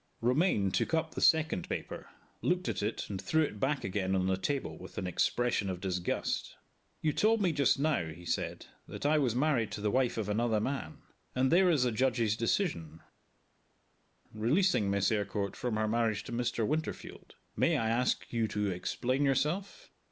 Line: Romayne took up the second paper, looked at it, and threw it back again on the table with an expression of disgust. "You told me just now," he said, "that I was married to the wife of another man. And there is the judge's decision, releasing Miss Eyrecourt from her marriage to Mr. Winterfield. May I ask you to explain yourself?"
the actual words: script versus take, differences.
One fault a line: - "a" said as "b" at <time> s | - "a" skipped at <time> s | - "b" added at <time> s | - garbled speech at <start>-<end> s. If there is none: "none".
none